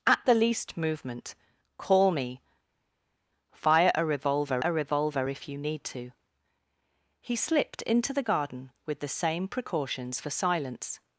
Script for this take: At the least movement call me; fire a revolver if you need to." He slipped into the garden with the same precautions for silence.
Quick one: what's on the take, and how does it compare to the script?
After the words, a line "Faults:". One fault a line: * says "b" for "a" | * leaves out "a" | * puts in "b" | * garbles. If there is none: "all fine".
At the least movement call me; fire a revolver a revolver if you need to." He slipped into the garden with the same precautions for silence.
Faults:
* puts in "a revolver"